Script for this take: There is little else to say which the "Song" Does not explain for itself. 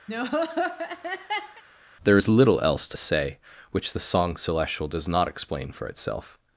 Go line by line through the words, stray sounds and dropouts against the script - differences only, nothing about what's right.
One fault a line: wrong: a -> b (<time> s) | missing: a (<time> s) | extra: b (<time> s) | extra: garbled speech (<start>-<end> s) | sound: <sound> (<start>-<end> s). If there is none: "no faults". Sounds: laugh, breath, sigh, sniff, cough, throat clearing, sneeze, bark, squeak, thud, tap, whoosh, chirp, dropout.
sound: laugh (0.1-1.6 s)
extra: Celestial (4.3 s)